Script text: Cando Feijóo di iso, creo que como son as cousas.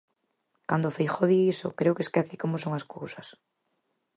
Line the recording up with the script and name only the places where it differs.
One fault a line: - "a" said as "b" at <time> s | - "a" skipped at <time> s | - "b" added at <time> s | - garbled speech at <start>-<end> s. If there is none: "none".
- "esquece" added at 2.1 s